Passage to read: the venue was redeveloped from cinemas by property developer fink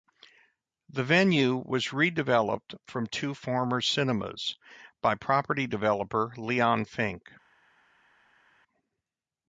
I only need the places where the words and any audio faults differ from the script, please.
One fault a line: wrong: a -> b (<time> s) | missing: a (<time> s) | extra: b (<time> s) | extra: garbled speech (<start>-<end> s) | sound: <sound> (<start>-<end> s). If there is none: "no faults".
extra: two former (3.0 s)
extra: leon (6.3 s)